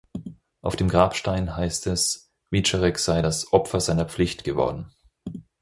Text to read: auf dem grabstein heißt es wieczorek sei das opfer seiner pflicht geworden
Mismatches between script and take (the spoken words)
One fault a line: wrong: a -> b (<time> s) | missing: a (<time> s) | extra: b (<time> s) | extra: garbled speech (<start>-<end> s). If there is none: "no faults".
no faults